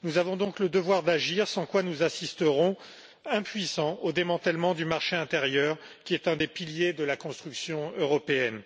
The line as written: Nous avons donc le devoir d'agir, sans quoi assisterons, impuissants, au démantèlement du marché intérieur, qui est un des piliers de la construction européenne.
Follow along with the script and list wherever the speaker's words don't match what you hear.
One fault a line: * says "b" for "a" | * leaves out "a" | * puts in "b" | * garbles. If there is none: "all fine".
* puts in "nous"